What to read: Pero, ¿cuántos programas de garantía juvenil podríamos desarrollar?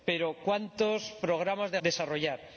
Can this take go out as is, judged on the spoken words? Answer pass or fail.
fail